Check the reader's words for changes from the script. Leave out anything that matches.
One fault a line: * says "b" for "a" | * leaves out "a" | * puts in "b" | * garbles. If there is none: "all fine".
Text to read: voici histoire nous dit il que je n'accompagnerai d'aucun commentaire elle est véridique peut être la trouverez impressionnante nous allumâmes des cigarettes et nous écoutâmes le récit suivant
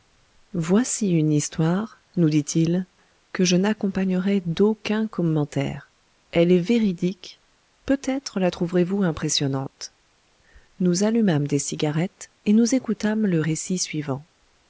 * puts in "une"
* puts in "vous"